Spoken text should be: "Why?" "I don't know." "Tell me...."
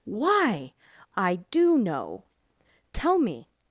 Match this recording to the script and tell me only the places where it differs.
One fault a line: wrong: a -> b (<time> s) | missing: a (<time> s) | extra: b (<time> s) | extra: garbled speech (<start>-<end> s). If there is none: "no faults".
wrong: don't -> do (1.5 s)